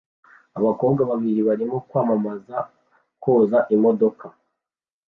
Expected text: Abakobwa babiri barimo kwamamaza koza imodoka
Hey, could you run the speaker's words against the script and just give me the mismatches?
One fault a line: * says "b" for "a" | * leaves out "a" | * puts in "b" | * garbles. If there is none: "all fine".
all fine